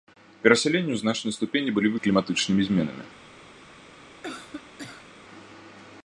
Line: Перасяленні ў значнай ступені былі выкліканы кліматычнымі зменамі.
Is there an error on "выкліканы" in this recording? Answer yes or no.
yes